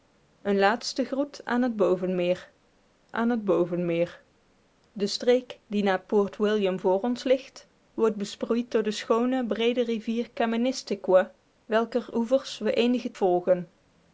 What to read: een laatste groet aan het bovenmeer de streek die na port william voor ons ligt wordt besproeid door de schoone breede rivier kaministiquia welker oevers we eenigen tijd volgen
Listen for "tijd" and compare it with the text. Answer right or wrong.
wrong